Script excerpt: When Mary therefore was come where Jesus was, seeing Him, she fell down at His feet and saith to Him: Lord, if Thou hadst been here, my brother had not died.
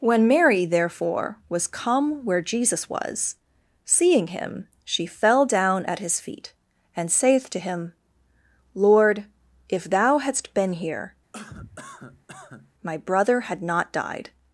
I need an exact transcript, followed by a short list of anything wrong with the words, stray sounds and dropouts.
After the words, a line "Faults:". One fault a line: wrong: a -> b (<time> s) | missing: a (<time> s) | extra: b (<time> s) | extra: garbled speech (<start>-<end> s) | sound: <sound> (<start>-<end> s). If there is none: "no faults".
When Mary therefore was come where Jesus was, seeing Him, she fell down at His feet and saith to Him: Lord, if Thou hadst been here, my brother had not died.
Faults:
sound: cough (11.3-12.7 s)